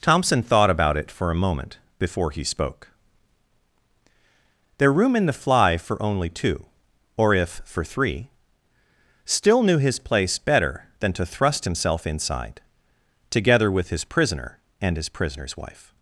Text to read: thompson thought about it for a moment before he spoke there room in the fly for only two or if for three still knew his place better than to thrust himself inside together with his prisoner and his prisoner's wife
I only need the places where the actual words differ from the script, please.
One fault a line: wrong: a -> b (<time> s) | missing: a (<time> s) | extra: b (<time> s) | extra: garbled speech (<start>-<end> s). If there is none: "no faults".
no faults